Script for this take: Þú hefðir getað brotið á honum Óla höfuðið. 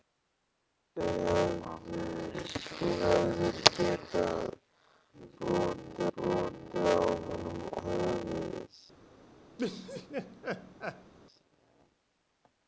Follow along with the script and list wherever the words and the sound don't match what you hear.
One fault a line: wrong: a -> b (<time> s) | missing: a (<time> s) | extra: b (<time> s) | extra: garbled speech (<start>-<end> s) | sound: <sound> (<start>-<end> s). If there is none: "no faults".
extra: brotið (6.2 s)
missing: Óla (7.6 s)
sound: laugh (9.6-11.1 s)